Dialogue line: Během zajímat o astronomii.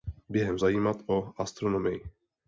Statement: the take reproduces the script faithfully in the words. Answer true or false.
true